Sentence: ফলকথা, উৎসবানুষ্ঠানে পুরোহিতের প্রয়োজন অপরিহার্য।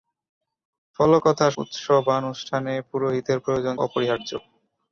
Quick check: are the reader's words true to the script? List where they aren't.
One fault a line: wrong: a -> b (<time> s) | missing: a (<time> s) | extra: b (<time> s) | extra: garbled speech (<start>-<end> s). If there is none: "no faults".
no faults